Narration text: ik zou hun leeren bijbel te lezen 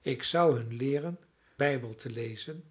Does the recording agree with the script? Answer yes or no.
yes